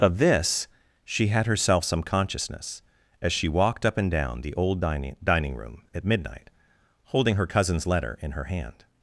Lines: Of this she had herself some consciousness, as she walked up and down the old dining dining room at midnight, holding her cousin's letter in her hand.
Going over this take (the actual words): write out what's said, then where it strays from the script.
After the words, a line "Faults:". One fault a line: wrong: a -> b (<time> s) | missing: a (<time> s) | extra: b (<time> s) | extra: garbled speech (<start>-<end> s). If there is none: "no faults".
Of this she had herself some consciousness, as she walked up and down the old dining dining room at midnight, holding her cousin's letter in her hand.
Faults:
no faults